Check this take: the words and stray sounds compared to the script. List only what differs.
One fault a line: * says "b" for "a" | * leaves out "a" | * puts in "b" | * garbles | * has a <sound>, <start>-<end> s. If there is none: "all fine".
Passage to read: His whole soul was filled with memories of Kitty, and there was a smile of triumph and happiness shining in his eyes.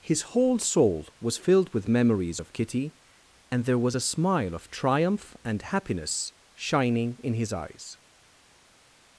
all fine